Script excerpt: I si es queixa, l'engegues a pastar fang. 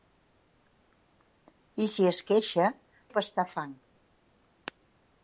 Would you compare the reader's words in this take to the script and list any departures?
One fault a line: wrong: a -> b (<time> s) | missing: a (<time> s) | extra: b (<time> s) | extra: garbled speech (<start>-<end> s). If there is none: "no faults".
missing: l'engegues (2.7 s)